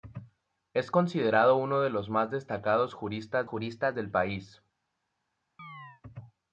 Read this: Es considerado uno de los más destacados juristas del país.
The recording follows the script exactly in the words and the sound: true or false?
false